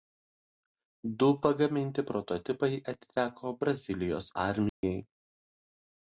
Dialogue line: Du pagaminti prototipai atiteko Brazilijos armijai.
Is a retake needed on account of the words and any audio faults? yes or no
yes